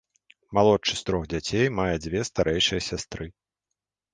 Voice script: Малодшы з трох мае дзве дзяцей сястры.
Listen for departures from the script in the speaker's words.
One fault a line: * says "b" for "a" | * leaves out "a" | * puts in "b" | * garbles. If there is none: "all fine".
* puts in "дзяцей"
* says "старэйшыя" for "дзяцей"